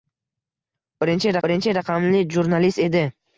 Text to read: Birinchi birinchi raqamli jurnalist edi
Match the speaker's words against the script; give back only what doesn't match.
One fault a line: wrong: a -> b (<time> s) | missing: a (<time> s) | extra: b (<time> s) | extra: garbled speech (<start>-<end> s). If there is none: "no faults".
no faults